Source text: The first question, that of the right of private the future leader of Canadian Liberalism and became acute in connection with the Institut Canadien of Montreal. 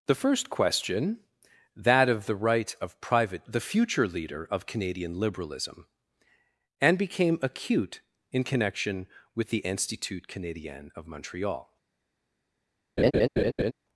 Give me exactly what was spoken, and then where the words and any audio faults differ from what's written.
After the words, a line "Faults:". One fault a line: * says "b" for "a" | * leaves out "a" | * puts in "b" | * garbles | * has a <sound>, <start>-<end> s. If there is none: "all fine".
The first question, that of the right of private the future leader of Canadian Liberalism and became acute in connection with the Institut Canadien of Montreal.
Faults:
* has a laugh, 13.0-13.7 s